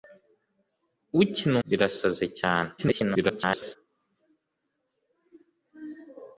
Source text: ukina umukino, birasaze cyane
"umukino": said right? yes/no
no